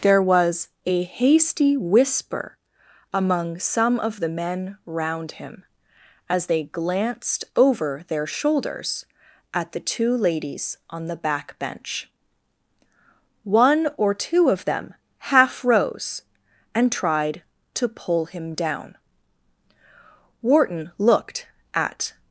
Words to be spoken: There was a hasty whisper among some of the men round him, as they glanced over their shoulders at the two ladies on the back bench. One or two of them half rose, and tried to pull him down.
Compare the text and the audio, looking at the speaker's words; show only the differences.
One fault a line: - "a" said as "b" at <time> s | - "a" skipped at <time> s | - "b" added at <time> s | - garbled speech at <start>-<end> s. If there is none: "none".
- "Wharton looked at" added at 20.4 s